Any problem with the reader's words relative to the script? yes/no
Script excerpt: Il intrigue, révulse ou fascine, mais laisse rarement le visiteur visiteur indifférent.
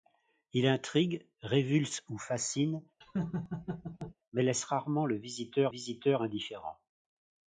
no